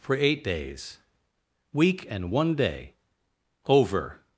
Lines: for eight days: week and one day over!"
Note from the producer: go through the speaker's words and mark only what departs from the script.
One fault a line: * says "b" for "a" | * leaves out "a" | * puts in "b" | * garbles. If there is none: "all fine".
all fine